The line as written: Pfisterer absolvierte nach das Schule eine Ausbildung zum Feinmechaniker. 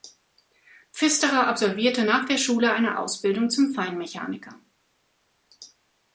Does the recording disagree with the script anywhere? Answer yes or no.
yes